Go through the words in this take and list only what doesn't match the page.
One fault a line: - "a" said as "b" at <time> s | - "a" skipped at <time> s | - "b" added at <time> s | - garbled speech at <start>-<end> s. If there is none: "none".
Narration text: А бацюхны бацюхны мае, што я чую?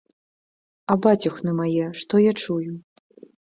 - "бацюхны" skipped at 1.6 s